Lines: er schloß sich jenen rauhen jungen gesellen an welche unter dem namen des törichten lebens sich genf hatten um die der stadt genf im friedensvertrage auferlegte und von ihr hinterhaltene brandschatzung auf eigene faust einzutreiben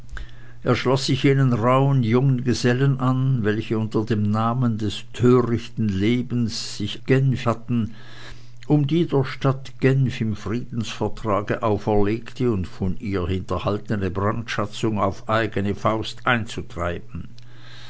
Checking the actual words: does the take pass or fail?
pass